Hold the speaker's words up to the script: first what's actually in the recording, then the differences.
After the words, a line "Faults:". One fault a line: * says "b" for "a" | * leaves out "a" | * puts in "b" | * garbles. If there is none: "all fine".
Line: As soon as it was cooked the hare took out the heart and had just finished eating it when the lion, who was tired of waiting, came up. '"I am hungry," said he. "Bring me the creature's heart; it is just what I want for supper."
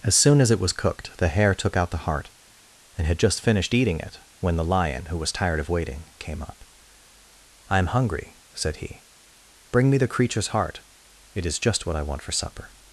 As soon as it was cooked the hare took out the heart and had just finished eating it when the lion, who was tired of waiting, came up. '"I am hungry," said he. "Bring me the creature's heart; it is just what I want for supper."
Faults:
all fine